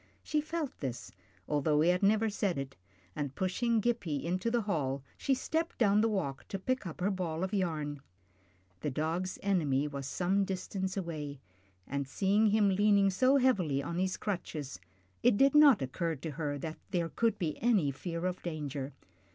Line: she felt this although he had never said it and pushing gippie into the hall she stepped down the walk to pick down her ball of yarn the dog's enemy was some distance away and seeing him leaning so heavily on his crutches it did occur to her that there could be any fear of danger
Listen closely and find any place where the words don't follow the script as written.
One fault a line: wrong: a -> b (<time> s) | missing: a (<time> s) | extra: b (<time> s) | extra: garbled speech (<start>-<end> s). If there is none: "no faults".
wrong: down -> up (6.9 s)
extra: not (15.6 s)